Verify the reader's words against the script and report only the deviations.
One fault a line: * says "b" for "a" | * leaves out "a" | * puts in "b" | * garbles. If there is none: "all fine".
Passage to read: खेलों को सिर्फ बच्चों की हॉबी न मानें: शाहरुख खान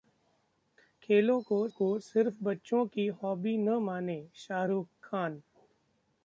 * puts in "को"